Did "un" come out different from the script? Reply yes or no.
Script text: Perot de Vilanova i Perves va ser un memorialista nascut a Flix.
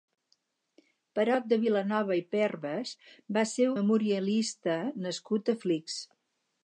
yes